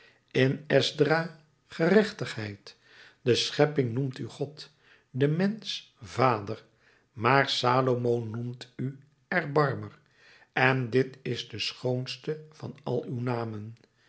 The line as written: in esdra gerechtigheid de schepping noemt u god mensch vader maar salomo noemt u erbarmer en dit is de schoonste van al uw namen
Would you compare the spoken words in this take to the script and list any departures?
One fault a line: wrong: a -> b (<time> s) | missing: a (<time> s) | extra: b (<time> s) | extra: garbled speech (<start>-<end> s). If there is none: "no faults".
extra: de (5.1 s)